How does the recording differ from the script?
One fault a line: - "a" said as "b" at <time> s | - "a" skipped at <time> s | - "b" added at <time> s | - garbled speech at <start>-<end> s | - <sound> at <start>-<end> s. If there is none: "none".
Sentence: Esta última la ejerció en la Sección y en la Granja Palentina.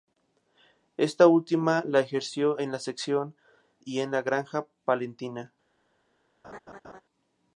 - laugh at 6.4-7.0 s